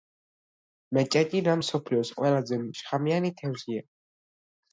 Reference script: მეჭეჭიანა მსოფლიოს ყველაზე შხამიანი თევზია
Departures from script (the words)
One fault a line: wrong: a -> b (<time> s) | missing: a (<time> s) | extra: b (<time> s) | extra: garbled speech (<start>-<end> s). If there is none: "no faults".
no faults